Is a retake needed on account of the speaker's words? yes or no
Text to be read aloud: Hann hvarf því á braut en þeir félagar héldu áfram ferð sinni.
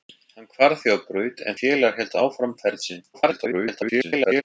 yes